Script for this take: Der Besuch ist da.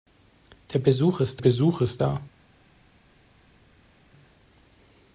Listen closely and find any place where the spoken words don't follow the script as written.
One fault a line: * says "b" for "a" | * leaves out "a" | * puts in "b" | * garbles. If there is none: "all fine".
* puts in "Besuch ist"